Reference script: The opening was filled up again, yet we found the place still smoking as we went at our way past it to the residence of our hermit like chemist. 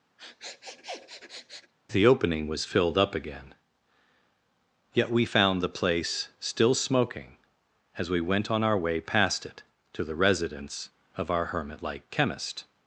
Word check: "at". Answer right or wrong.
wrong